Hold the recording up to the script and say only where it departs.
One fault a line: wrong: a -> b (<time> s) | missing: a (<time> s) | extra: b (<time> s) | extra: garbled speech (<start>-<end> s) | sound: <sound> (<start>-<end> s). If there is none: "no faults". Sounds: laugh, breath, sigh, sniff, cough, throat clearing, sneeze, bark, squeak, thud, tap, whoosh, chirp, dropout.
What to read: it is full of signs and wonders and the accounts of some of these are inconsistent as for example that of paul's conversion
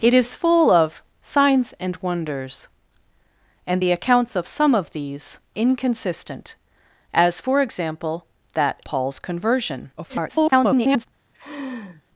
missing: are (5.4 s)
missing: of (8.8 s)
extra: garbled speech (10.0-11.1 s)
sound: laugh (11.3-12.0 s)